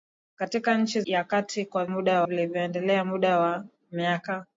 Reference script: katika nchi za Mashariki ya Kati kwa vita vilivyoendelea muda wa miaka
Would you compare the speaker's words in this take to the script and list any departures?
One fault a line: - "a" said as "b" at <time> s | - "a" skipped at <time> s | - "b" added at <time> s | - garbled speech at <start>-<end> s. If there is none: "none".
- "za Mashariki" skipped at 1.0 s
- "vita" said as "muda" at 1.9 s